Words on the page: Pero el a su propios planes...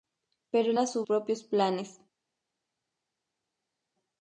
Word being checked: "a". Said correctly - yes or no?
yes